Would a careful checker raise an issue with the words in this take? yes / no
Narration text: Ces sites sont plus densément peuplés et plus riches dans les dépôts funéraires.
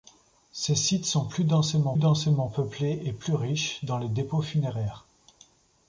yes